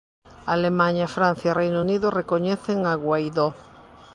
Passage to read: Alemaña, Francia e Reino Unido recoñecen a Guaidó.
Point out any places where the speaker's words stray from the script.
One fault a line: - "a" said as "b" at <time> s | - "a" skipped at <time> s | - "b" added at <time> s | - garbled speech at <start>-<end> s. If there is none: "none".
none